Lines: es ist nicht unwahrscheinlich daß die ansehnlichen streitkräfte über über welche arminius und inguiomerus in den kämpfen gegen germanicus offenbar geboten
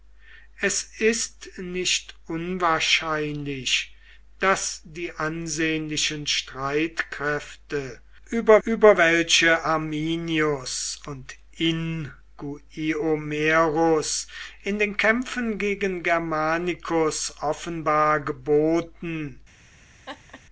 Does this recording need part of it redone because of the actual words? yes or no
no